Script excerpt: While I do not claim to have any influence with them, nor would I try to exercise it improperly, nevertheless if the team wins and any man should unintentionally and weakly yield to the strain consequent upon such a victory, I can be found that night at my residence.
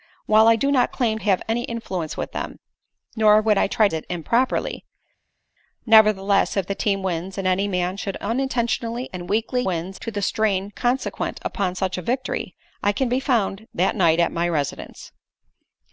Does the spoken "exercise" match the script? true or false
false